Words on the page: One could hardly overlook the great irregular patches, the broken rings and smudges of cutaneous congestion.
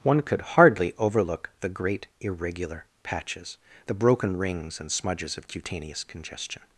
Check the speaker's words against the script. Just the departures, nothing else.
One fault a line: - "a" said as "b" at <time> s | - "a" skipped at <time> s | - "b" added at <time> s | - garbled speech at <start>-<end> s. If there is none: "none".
none